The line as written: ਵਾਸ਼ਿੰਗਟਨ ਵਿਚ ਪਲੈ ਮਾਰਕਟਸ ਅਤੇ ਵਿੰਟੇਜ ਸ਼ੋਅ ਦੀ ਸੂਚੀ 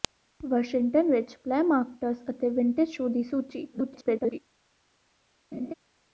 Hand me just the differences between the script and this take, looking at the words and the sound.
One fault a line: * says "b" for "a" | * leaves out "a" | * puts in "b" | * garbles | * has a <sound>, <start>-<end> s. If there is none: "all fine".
* garbles
* has a laugh, 5.5-5.7 s